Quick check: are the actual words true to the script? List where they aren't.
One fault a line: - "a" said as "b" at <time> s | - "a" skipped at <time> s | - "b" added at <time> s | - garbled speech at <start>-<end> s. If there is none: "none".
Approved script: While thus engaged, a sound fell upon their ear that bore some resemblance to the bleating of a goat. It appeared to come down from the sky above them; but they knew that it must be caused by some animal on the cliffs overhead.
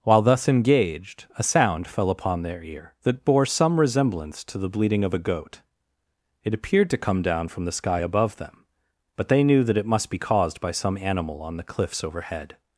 none